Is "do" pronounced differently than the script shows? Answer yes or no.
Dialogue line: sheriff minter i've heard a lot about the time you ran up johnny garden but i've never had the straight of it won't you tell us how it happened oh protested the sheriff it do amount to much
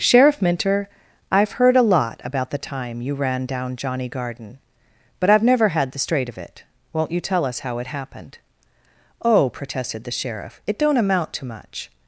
yes